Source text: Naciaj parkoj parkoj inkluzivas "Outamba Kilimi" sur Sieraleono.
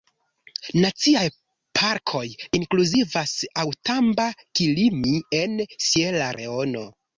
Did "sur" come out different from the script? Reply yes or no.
yes